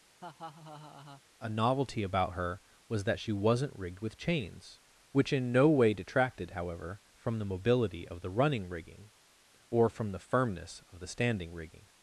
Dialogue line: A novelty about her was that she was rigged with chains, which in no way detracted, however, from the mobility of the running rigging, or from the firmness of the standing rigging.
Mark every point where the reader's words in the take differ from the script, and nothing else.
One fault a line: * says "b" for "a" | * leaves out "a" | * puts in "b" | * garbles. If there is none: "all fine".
* says "wasn't" for "was"